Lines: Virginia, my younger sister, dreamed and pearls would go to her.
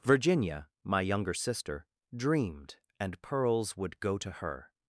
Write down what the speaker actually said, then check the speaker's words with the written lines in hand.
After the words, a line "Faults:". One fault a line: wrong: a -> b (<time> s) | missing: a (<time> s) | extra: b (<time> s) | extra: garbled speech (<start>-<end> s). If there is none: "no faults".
Virginia, my younger sister, dreamed and pearls would go to her.
Faults:
no faults